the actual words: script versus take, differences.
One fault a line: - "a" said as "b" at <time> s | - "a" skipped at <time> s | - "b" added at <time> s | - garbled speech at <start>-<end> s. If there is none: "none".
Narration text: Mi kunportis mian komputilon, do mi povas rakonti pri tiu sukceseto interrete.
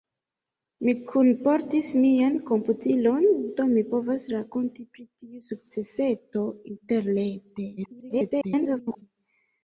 - garbled speech at 7.8-9.0 s